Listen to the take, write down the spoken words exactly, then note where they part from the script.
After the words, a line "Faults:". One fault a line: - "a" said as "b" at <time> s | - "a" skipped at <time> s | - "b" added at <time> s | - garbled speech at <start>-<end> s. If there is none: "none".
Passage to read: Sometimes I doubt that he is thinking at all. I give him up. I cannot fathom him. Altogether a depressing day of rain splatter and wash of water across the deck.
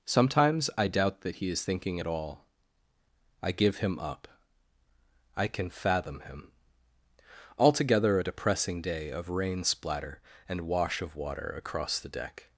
Sometimes I doubt that he is thinking at all. I give him up. I can fathom him. Altogether a depressing day of rain splatter and wash of water across the deck.
Faults:
- "cannot" said as "can" at 5.5 s